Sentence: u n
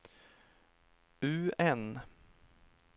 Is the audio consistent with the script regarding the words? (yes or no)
yes